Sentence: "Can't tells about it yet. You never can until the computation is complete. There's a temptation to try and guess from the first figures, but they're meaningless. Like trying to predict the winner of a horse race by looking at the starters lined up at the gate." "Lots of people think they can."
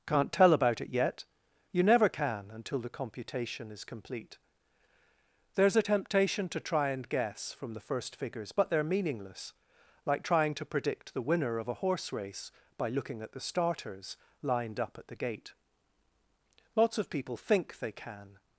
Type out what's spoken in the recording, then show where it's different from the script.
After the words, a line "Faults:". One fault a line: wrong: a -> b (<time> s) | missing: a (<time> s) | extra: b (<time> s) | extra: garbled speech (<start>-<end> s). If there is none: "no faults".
"Can't tell about it yet. You never can until the computation is complete. There's a temptation to try and guess from the first figures, but they're meaningless. Like trying to predict the winner of a horse race by looking at the starters lined up at the gate." "Lots of people think they can."
Faults:
wrong: tells -> tell (0.3 s)